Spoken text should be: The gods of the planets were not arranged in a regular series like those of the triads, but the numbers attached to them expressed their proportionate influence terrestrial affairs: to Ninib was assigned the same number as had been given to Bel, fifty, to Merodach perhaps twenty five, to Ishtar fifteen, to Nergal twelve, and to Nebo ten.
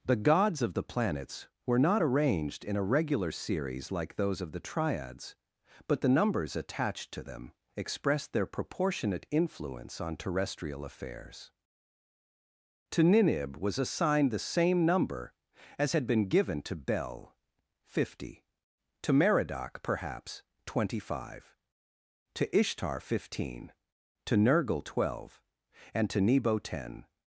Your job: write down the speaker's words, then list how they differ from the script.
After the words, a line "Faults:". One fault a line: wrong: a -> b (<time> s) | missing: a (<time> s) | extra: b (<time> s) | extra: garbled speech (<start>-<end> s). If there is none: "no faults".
The gods of the planets were not arranged in a regular series like those of the triads, but the numbers attached to them expressed their proportionate influence on terrestrial affairs: to Ninib was assigned the same number as had been given to Bel, fifty, to Merodach perhaps twenty five, to Ishtar fifteen, to Nergal twelve, and to Nebo ten.
Faults:
extra: on (10.0 s)